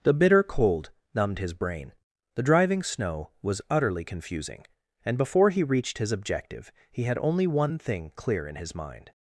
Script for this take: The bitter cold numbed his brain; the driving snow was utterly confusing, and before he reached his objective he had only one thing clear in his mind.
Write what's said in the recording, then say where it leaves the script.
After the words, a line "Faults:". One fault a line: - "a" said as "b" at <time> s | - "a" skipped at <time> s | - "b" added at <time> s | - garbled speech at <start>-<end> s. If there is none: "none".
The bitter cold numbed his brain; the driving snow was utterly confusing, and before he reached his objective he had only one thing clear in his mind.
Faults:
none